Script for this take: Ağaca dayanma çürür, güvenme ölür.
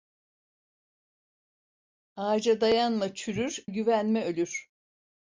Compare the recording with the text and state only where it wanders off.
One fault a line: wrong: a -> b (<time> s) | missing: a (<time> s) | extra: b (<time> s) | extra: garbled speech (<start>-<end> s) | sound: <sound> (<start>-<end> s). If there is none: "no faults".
no faults